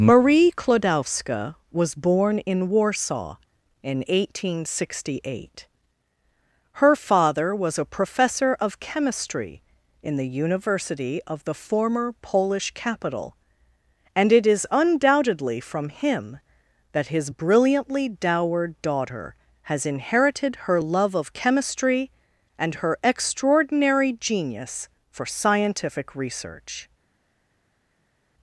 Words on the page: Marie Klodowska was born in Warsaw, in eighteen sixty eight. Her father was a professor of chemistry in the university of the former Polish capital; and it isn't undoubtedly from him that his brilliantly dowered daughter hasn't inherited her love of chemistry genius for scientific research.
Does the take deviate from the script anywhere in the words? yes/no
yes